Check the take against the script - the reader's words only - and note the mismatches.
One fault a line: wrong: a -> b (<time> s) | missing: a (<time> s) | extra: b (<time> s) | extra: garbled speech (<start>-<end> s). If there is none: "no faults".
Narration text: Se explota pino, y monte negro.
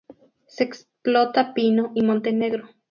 no faults